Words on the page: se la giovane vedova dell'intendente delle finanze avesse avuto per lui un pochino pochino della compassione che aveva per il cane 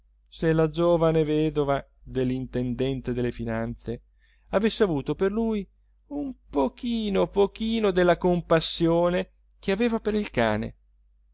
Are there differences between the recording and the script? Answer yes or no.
no